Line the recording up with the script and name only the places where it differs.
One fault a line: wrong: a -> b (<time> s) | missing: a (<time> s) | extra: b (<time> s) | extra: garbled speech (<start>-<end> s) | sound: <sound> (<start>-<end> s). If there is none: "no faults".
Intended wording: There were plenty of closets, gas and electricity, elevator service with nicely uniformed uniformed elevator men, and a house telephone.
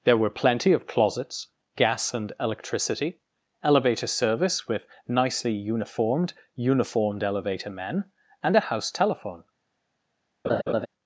sound: laugh (10.4-10.9 s)